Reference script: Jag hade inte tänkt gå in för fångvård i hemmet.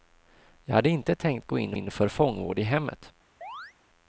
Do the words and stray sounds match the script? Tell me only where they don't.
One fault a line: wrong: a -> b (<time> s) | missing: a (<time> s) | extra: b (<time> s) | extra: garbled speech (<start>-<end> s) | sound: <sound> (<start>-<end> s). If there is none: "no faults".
extra: in (1.7 s)
sound: chirp (3.4-3.7 s)